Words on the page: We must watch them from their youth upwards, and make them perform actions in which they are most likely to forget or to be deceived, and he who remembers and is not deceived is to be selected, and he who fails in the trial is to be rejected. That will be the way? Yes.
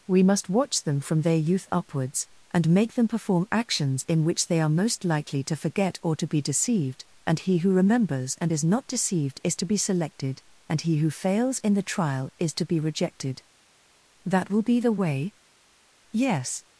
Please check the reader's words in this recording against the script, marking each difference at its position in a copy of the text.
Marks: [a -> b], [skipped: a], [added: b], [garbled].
We must watch them from their youth upwards, and make them perform actions in which they are most likely to forget or to be deceived, and he who remembers and is not deceived is to be selected, and he who fails in the trial is to be rejected. That will be the way? Yes.